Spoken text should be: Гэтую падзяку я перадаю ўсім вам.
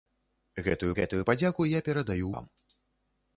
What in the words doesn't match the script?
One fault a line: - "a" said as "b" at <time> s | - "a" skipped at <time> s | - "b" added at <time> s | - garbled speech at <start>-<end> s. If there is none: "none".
- "гэтую" added at 1.0 s
- "ўсім" skipped at 2.3 s